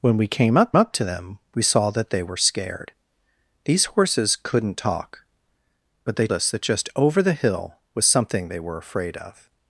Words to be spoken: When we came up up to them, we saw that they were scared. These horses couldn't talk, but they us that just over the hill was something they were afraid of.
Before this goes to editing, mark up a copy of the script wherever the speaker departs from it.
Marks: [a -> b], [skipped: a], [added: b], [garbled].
When we came up up to them, we saw that they were scared. These horses couldn't talk, but they us that just over the hill was something they were afraid of.